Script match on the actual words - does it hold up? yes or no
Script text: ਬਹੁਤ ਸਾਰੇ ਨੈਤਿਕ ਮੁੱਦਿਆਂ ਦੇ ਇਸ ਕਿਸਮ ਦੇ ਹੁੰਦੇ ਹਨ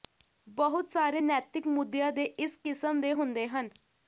yes